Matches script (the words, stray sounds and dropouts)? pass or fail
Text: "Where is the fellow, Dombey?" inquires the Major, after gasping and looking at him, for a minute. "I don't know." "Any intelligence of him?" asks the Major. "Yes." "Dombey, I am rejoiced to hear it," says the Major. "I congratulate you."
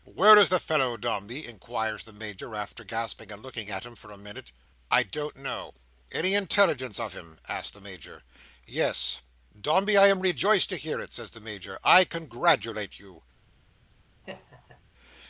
fail